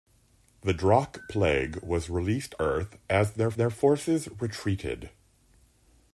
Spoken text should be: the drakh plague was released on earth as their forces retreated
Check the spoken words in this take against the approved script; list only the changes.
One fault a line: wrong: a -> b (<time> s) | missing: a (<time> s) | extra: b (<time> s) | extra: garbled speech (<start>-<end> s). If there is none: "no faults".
missing: on (2.5 s)
extra: their (3.5 s)